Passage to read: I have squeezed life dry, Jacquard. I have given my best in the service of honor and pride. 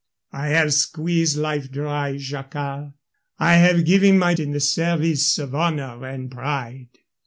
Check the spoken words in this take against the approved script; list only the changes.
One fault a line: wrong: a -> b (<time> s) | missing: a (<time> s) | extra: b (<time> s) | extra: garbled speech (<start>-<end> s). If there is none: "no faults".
missing: best (4.3 s)